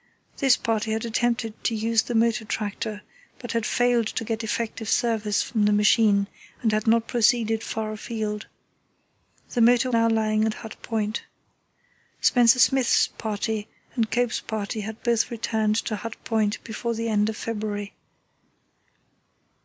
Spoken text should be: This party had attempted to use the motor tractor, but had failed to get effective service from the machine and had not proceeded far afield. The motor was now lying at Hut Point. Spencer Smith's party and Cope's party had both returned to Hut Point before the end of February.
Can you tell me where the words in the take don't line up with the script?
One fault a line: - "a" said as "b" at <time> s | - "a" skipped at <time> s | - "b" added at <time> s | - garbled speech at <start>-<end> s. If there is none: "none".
- "was" skipped at 9.9 s